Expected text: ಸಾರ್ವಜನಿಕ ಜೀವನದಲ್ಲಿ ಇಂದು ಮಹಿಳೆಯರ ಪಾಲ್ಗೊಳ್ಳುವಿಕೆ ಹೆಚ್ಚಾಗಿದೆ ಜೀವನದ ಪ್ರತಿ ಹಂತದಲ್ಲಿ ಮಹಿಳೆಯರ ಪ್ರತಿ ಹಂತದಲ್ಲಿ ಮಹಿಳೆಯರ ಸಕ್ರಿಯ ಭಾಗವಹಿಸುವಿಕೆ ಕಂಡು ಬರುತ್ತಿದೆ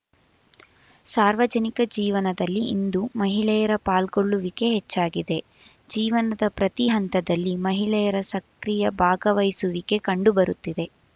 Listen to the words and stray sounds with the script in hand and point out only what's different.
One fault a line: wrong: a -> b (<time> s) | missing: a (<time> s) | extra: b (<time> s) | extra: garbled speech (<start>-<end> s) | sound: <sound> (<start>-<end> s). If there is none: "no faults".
missing: ಪ್ರತಿ ಹಂತದಲ್ಲಿ ಮಹಿಳೆಯರ (8.2 s)